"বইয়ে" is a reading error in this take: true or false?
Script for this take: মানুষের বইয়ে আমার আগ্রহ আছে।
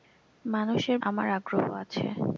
true